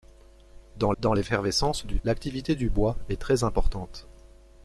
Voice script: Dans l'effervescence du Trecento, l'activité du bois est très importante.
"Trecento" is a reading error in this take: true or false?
true